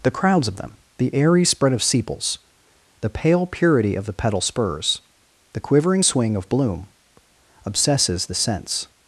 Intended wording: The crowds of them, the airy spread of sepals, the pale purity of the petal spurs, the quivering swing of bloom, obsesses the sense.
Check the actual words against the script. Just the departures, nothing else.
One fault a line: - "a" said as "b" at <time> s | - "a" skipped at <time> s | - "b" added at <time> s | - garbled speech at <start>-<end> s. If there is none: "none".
none